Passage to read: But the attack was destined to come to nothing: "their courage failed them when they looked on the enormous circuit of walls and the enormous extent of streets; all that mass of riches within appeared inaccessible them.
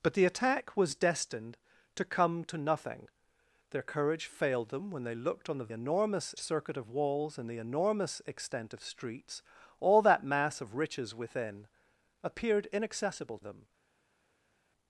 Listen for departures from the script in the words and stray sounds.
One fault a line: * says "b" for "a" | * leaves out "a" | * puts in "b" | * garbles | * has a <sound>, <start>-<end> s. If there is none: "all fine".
all fine